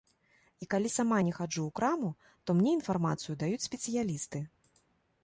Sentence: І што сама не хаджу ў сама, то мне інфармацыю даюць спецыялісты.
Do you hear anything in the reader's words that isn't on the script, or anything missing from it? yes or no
yes